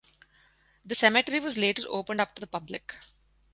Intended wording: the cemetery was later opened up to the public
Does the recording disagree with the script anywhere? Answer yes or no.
no